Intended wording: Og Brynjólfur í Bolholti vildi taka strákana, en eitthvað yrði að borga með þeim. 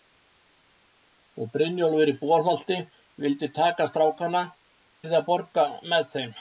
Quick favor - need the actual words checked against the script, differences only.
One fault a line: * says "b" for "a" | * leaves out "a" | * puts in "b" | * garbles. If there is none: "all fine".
* leaves out "en eitthvað"